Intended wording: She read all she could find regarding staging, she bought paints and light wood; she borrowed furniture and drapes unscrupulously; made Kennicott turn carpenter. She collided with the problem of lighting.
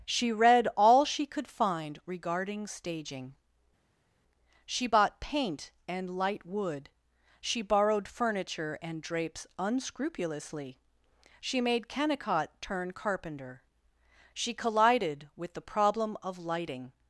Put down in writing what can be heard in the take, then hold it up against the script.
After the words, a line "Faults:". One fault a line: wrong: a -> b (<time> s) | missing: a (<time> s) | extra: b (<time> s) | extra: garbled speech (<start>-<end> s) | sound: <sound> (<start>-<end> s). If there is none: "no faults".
She read all she could find regarding staging, she bought paint and light wood; she borrowed furniture and drapes unscrupulously; she made Kennicott turn carpenter. She collided with the problem of lighting.
Faults:
wrong: paints -> paint (5.2 s)
extra: she (11.4 s)